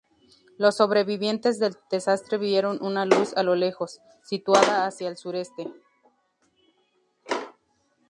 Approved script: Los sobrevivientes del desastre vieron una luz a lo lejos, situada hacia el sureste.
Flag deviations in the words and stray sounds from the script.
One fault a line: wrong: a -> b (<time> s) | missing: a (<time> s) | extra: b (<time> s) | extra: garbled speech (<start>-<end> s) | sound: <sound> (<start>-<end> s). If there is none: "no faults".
no faults